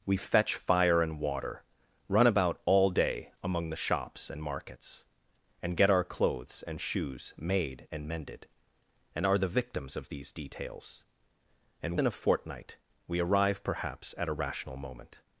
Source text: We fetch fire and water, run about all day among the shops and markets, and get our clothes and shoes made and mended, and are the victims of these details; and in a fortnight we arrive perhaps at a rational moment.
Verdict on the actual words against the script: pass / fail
pass